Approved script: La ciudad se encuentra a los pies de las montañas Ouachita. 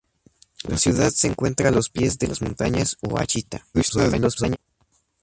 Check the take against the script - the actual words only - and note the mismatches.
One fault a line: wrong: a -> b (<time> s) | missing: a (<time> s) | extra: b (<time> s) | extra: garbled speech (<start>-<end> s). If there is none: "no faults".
extra: garbled speech (3.7-4.6 s)